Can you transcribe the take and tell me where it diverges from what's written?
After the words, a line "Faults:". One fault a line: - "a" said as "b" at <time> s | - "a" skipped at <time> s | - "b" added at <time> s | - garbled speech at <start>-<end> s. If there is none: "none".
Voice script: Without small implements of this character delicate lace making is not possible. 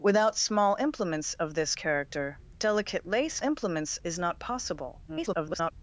Without small implements of this character delicate lace implements is not possible. [garbled]
Faults:
- "making" said as "implements" at 3.4 s
- garbled speech at 5.1-5.7 s